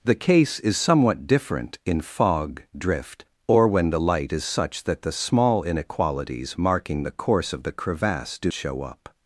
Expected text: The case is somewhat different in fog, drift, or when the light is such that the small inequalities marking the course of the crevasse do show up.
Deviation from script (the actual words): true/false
false